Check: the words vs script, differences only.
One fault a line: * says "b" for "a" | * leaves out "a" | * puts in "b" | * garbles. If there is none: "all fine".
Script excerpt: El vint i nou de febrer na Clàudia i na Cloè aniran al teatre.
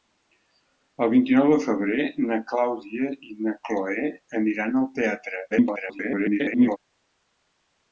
* garbles